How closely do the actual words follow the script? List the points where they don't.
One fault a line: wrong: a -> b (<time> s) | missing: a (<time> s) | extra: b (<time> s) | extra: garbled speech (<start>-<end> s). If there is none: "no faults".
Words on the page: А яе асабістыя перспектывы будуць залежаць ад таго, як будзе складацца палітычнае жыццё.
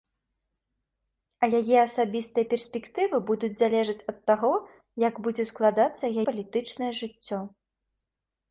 no faults